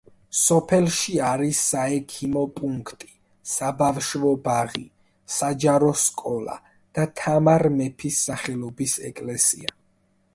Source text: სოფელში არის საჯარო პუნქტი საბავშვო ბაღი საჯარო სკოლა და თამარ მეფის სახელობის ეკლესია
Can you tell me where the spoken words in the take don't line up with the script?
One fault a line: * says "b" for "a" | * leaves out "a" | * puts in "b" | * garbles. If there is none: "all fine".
* says "საექიმო" for "საჯარო"